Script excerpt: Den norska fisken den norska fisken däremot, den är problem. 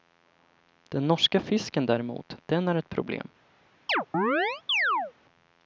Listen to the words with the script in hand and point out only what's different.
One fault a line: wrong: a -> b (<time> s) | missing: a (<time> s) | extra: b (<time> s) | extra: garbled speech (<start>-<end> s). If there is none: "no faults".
missing: den norska fisken (1.9 s)
extra: ett (2.8 s)